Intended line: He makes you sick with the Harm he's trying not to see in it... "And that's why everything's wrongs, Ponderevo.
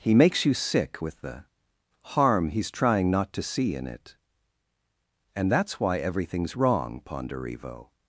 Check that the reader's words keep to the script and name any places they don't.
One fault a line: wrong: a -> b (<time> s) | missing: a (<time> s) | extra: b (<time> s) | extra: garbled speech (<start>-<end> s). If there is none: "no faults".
wrong: wrongs -> wrong (6.6 s)